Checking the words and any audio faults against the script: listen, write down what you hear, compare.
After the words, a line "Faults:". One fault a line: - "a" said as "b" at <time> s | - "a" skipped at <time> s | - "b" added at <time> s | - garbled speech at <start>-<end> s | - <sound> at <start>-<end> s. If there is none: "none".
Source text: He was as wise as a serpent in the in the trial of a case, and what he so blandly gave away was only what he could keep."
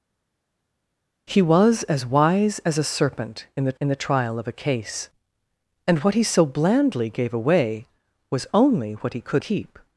He was as wise as a serpent in the in the trial of a case, and what he so blandly gave away was only what he could keep."
Faults:
none